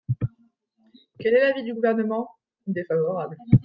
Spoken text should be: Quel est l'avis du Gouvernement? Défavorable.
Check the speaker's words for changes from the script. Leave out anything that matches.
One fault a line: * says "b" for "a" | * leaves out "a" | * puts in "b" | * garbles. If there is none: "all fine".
all fine